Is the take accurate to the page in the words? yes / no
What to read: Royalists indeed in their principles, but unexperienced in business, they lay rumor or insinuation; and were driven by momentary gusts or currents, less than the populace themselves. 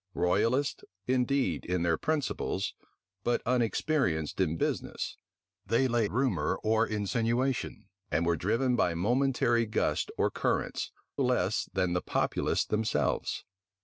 yes